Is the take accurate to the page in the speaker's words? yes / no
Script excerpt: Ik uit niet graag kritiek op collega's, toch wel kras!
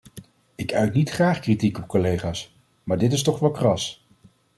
no